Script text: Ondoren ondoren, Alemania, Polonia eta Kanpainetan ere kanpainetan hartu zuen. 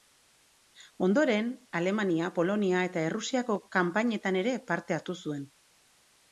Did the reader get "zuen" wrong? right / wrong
right